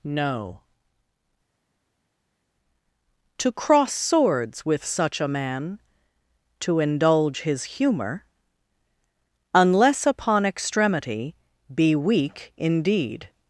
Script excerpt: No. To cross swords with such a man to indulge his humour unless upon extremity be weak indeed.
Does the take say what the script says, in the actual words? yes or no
yes